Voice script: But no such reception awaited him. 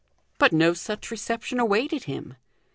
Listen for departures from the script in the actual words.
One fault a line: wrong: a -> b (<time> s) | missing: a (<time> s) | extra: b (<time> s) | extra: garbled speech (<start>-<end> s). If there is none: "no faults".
no faults